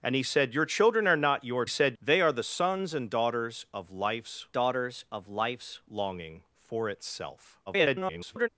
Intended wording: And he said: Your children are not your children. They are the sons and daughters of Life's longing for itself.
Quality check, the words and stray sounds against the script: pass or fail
fail